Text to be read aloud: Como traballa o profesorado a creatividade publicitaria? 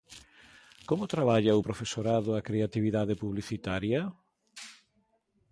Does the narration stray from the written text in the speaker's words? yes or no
no